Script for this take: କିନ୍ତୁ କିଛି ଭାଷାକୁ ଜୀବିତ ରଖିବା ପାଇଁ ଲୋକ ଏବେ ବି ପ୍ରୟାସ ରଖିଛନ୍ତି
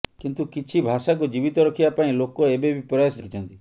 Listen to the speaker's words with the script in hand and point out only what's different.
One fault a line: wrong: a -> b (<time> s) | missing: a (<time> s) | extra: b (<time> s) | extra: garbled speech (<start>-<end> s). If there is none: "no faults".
no faults